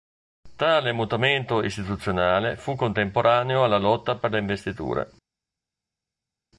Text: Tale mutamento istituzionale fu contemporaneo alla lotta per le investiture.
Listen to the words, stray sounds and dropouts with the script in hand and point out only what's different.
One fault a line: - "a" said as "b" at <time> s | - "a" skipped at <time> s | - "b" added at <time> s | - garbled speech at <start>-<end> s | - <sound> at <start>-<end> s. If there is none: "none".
none